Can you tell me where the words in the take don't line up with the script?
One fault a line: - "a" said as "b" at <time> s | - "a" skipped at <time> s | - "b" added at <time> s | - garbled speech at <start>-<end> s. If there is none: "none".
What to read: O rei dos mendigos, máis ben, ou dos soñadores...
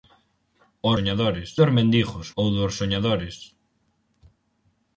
- "rei" said as "soñadores" at 0.9 s
- "máis ben" skipped at 2.3 s